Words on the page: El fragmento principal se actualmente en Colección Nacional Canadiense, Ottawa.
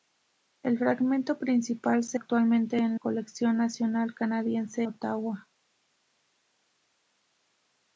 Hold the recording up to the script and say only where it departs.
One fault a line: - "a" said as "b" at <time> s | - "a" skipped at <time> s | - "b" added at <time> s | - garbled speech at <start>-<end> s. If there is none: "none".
none